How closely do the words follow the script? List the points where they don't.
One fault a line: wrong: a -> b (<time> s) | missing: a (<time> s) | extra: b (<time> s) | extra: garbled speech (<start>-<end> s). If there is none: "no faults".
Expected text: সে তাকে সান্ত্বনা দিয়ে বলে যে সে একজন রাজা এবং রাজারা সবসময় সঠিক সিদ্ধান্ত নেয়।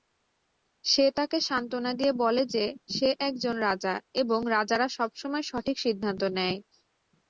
no faults